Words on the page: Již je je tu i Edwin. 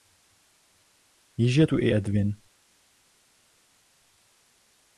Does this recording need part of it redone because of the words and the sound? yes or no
yes